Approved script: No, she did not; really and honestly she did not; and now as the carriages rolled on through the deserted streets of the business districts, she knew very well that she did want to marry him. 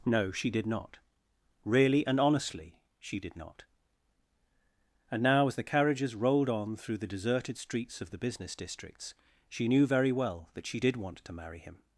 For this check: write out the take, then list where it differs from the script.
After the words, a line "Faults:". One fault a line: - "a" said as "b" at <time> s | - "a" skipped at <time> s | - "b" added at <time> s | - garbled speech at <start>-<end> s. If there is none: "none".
No, she did not; really and honestly she did not; and now as the carriages rolled on through the deserted streets of the business districts, she knew very well that she did want to marry him.
Faults:
none